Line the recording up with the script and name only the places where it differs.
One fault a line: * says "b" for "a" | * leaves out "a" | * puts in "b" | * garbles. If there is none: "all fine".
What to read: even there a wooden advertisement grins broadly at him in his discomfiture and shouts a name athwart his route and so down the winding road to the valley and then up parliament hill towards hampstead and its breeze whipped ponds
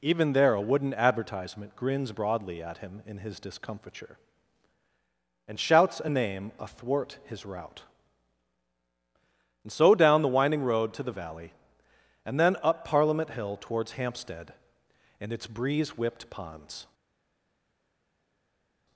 all fine